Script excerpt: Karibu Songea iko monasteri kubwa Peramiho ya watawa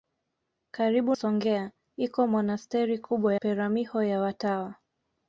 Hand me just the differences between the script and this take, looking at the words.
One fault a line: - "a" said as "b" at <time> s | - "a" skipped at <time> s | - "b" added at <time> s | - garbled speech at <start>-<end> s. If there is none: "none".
none